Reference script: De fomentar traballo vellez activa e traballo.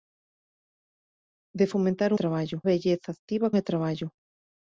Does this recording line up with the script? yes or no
yes